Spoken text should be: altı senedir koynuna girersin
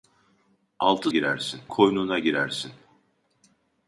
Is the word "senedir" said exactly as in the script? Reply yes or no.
no